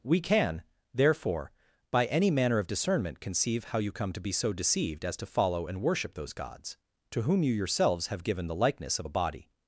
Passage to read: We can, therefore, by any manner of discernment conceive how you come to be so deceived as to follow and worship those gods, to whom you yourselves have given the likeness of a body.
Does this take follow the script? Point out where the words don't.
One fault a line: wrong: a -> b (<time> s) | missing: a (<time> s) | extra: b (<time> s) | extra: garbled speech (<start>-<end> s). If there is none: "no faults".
no faults